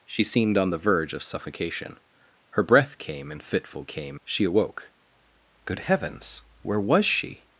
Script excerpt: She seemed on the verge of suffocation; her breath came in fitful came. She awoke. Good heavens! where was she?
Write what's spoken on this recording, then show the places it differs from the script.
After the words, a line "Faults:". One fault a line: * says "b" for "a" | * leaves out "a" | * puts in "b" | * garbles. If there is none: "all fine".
She seemed on the verge of suffocation; her breath came in fitful came. She awoke. Good heavens! where was she?
Faults:
all fine